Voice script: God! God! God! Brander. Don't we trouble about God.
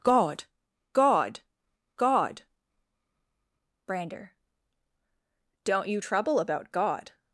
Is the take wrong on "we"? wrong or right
wrong